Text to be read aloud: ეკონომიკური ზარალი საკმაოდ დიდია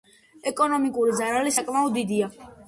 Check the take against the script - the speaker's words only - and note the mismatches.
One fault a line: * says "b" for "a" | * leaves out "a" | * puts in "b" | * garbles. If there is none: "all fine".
all fine